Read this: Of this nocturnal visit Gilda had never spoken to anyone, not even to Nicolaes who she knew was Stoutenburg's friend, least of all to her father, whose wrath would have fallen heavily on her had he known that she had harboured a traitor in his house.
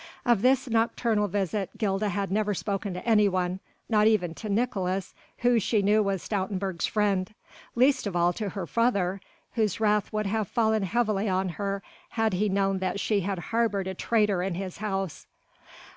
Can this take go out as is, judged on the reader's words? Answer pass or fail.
pass